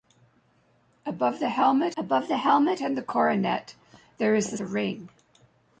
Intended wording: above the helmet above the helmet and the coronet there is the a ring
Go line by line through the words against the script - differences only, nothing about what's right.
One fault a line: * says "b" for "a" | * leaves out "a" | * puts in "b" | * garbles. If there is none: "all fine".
all fine